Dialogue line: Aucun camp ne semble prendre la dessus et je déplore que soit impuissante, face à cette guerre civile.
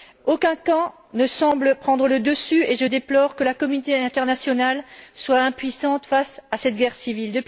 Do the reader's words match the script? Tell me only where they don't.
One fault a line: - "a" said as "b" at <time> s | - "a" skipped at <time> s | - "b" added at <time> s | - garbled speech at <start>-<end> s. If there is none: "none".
- "la" said as "le" at 2.1 s
- "la communauté internationale" added at 3.4 s